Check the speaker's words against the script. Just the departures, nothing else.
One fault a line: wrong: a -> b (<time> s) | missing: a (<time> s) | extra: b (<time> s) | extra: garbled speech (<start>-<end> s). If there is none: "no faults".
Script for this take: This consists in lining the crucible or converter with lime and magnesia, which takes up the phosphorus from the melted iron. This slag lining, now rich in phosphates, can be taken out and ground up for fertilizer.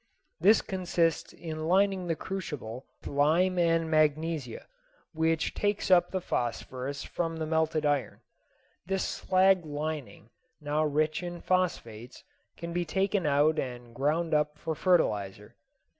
missing: or converter with (2.9 s)